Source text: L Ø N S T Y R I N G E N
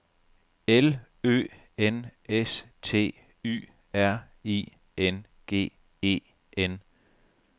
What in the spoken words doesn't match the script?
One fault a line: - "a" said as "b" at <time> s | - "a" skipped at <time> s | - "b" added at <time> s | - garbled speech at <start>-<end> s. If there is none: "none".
none